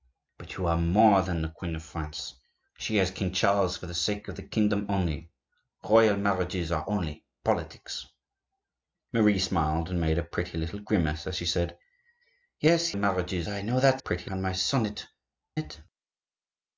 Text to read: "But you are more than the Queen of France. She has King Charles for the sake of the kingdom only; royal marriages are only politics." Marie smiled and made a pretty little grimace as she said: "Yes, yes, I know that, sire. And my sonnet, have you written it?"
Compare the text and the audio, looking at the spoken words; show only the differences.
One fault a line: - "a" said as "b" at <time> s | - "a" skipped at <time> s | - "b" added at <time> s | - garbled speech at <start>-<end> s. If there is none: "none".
- "yes" said as "marriages" at 12.9 s
- "sire" said as "pretty" at 14.0 s
- "have you written" skipped at 15.1 s